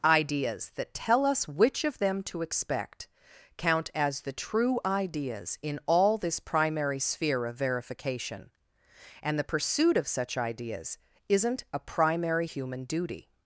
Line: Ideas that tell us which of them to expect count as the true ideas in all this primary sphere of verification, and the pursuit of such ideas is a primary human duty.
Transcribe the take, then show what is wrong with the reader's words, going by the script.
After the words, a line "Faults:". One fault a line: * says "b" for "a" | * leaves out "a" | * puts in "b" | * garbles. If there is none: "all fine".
Ideas that tell us which of them to expect count as the true ideas in all this primary sphere of verification, and the pursuit of such ideas isn't a primary human duty.
Faults:
* says "isn't" for "is"